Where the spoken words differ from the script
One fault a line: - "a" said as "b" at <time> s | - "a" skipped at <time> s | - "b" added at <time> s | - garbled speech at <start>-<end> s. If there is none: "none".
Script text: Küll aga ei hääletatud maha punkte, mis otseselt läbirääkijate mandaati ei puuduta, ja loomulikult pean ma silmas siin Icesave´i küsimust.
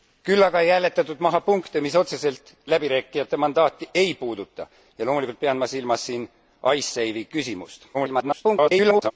- garbled speech at 7.9-9.1 s